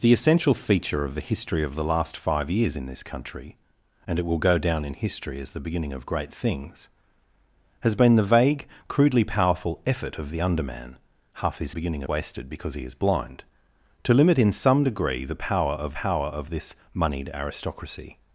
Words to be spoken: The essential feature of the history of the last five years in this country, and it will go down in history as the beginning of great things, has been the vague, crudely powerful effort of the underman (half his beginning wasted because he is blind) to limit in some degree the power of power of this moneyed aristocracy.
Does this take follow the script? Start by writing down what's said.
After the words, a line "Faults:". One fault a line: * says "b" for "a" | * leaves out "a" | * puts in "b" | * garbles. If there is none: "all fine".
The essential feature of the history of the last five years in this country, and it will go down in history as the beginning of great things, has been the vague, crudely powerful effort of the underman (half his beginning wasted because he is blind) to limit in some degree the power of power of this moneyed aristocracy.
Faults:
all fine